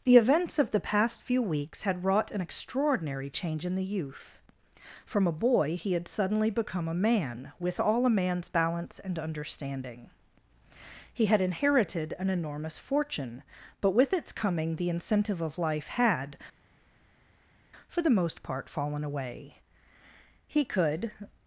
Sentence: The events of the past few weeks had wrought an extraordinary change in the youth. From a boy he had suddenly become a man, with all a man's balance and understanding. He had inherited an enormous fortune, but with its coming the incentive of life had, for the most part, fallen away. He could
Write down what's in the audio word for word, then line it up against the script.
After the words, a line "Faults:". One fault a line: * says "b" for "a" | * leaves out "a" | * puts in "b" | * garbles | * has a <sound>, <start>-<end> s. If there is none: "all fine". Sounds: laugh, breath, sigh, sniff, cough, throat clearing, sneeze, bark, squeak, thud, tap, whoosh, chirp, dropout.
The events of the past few weeks had wrought an extraordinary change in the youth. From a boy he had suddenly become a man, with all a man's balance and understanding. He had inherited an enormous fortune, but with its coming the incentive of life had, for the most part, fallen away. He could
Faults:
all fine